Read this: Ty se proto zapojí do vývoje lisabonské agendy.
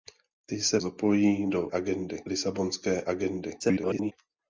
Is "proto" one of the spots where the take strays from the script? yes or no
yes